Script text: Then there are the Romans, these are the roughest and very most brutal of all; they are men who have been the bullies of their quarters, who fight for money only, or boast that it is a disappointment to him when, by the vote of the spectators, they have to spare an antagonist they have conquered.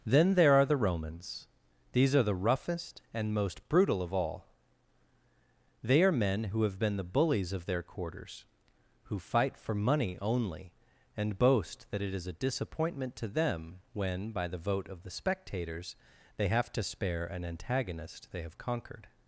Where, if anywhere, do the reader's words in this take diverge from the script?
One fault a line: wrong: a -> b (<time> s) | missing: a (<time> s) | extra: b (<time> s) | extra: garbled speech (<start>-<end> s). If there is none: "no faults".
missing: very (3.4 s)
wrong: or -> and (11.2 s)
wrong: him -> them (13.3 s)